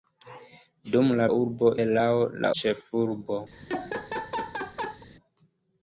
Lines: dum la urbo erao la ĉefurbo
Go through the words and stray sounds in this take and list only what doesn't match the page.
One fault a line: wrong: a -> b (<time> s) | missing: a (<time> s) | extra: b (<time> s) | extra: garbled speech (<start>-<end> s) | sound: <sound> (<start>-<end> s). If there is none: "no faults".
sound: laugh (3.5-5.1 s)